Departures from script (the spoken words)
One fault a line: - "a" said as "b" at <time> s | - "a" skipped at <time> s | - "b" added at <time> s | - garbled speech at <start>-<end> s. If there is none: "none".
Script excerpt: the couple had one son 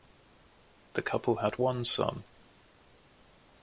none